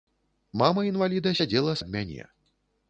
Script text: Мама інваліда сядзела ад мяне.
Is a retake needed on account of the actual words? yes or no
no